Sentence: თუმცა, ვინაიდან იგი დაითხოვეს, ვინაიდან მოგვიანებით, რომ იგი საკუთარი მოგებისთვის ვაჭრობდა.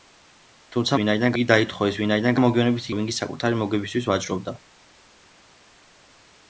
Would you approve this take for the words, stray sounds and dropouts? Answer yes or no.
yes